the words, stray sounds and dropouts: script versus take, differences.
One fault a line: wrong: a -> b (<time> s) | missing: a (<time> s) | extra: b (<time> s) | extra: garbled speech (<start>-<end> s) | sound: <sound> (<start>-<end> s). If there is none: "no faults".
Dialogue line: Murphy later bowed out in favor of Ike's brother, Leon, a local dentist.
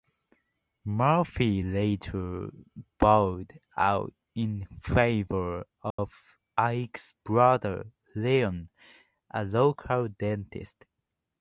sound: dropout (5.9-6.0 s)